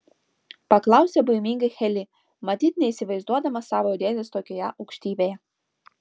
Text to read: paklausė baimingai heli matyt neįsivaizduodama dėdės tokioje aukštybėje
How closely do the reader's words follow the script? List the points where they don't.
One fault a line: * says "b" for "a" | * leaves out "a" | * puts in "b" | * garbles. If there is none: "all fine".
* puts in "savo"